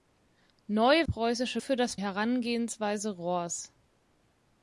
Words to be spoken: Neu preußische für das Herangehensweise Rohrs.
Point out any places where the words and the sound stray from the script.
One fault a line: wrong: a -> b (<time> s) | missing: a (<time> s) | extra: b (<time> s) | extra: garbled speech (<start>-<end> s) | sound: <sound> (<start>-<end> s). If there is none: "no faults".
no faults